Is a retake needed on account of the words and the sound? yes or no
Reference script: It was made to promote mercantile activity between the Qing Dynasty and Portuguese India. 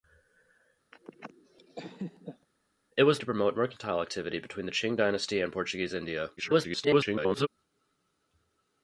yes